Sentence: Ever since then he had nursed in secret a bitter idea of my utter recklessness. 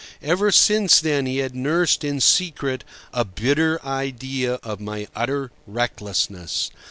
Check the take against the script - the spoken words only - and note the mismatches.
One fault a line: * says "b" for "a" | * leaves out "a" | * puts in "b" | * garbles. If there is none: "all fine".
all fine